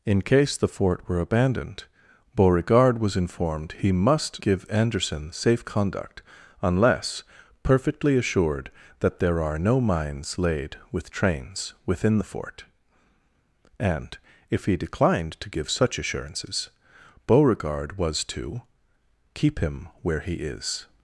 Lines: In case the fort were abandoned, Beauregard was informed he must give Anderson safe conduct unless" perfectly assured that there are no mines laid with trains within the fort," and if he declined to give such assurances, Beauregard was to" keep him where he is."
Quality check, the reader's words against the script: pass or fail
pass